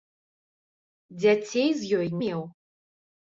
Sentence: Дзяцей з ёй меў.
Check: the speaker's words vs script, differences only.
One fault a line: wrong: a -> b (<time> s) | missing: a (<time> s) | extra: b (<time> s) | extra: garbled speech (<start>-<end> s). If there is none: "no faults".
no faults